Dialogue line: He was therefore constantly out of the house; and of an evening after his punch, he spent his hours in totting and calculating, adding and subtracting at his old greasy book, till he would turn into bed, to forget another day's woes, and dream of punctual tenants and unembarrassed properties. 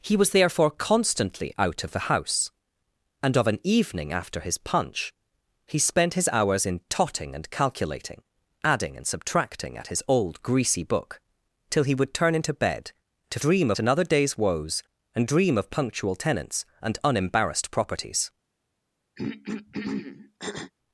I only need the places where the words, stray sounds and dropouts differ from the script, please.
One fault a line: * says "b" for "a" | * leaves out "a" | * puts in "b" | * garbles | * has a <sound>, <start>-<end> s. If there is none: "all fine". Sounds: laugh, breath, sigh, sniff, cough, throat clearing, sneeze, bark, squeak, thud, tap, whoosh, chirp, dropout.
* says "dream" for "forget"
* has a throat clearing, 19.2-20.7 s